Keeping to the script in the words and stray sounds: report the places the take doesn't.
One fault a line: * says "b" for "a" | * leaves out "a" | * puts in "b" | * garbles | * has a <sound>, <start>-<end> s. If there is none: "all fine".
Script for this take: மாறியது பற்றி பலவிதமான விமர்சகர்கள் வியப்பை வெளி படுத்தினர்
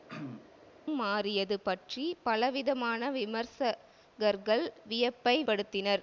* has a throat clearing, 0.1-0.5 s
* leaves out "வெளி"